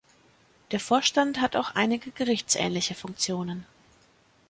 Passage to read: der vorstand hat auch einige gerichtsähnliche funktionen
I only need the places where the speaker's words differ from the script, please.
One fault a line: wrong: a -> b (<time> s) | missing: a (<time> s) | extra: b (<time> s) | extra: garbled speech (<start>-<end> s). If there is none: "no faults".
no faults